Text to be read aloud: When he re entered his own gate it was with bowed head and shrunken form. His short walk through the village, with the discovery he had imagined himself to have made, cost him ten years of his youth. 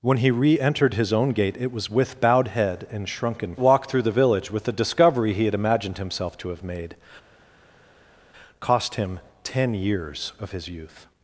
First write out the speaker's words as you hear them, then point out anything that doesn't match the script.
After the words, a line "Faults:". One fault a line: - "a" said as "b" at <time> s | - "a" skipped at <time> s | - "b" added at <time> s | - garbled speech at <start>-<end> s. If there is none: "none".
When he re entered his own gate it was with bowed head and shrunken walk through the village, with the discovery he had imagined himself to have made, cost him ten years of his youth.
Faults:
- "form His short" skipped at 3.5 s